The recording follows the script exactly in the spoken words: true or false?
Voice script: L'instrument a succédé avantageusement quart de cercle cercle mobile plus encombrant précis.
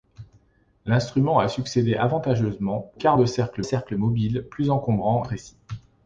true